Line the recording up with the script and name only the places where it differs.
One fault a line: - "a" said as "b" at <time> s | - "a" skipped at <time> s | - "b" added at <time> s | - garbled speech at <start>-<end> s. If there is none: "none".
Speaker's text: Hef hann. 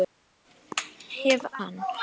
none